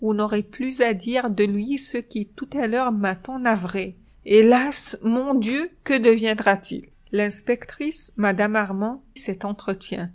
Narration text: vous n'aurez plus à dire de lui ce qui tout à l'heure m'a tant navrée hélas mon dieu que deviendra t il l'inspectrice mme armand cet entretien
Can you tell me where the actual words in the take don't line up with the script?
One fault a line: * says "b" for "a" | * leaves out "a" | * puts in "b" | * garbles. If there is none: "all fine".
all fine